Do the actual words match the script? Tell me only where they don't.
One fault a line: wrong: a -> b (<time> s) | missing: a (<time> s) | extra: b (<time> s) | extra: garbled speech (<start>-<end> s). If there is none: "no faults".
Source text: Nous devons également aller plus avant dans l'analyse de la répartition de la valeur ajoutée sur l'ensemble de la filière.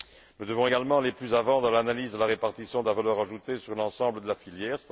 no faults